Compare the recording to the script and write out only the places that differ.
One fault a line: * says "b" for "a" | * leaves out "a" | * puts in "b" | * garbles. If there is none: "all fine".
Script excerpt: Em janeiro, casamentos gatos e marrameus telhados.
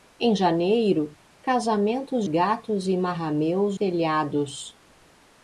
all fine